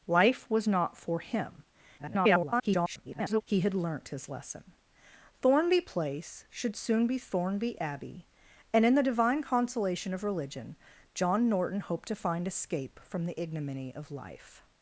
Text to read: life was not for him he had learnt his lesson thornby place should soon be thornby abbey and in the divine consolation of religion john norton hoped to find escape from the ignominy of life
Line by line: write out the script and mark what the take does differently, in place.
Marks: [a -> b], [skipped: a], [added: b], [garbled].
life was not for him [garbled] he had learnt his lesson thornby place should soon be thornby abbey and in the divine consolation of religion john norton hoped to find escape from the ignominy of life